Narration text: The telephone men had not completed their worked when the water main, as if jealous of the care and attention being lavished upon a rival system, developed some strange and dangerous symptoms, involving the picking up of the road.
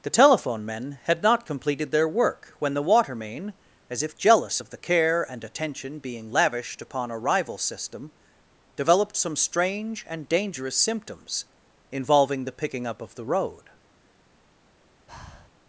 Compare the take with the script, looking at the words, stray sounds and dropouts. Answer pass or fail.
fail